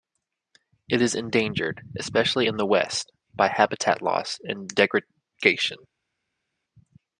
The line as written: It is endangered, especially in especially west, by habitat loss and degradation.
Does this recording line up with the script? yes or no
no